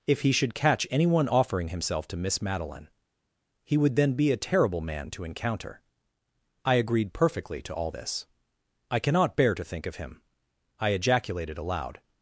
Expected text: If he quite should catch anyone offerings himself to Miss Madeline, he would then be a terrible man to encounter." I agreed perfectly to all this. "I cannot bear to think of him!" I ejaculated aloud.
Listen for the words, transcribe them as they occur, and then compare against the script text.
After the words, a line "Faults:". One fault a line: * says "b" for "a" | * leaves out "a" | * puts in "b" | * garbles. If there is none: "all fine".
If he should catch anyone offering himself to Miss Madeline, he would then be a terrible man to encounter." I agreed perfectly to all this. "I cannot bear to think of him!" I ejaculated aloud.
Faults:
* leaves out "quite"
* says "offering" for "offerings"